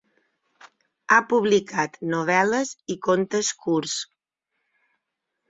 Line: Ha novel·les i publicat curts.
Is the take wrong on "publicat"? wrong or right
wrong